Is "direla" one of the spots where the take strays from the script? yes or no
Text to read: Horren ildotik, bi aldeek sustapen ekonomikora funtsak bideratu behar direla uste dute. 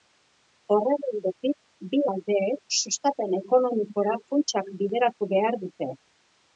yes